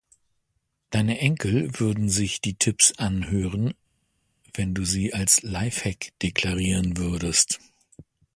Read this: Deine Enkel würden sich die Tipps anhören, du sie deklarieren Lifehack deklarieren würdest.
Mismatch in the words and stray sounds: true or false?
true